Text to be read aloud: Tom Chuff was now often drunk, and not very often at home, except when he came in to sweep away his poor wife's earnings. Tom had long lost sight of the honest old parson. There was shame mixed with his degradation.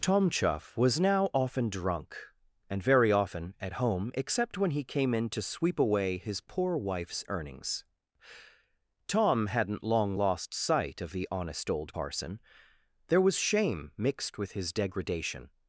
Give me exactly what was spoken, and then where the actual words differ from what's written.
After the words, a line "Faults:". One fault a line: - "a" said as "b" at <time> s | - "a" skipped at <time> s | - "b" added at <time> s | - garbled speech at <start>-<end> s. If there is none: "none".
Tom Chuff was now often drunk, and very often at home, except when he came in to sweep away his poor wife's earnings. Tom hadn't long lost sight of the honest old parson. There was shame mixed with his degradation.
Faults:
- "not" skipped at 2.8 s
- "had" said as "hadn't" at 9.4 s